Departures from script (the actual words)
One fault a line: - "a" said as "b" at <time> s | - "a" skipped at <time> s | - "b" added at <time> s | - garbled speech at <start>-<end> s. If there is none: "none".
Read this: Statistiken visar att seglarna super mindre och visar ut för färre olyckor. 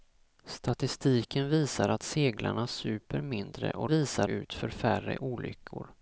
none